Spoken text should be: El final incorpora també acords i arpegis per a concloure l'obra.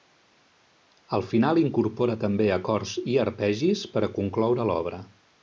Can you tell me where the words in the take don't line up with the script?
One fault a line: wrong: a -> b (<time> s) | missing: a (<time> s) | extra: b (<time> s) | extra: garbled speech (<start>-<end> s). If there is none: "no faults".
no faults